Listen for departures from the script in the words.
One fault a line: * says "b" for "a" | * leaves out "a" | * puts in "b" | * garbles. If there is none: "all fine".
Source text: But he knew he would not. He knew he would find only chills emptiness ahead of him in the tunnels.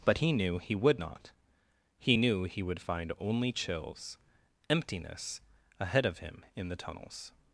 all fine